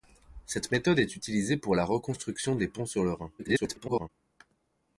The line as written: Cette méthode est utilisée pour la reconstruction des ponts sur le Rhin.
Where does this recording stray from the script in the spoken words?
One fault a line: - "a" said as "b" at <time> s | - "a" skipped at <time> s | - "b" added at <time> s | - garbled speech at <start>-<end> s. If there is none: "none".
- garbled speech at 3.4-4.1 s